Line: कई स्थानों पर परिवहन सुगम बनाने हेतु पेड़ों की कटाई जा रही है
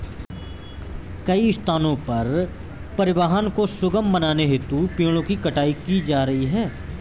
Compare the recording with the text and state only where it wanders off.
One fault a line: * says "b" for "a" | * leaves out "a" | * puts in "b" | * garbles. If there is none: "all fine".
* puts in "को"
* puts in "की"